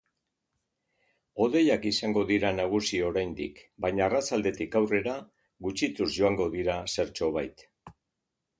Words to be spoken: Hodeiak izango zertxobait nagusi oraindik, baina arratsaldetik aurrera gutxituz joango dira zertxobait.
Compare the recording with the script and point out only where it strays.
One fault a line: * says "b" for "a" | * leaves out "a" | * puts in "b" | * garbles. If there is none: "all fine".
* says "dira" for "zertxobait"